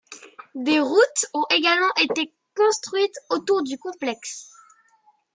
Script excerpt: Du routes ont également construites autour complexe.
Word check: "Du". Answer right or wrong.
wrong